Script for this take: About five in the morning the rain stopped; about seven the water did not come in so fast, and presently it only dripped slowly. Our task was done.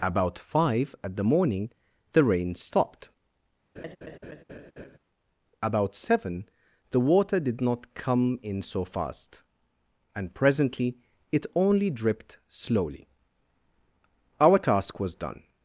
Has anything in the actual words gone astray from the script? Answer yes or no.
yes